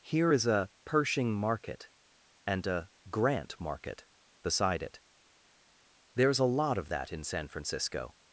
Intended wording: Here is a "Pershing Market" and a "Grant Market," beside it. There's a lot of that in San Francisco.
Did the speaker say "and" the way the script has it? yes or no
yes